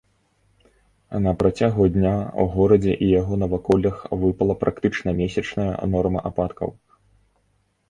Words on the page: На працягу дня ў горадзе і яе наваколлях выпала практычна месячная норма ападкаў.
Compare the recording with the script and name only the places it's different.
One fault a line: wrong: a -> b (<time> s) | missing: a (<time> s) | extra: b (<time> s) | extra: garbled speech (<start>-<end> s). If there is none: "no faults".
wrong: яе -> яго (3.2 s)